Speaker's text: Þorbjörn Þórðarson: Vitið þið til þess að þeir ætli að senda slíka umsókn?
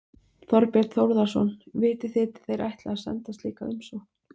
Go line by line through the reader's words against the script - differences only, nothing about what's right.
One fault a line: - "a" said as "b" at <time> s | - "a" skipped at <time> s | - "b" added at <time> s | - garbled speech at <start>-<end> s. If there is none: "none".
- "þess að" skipped at 2.5 s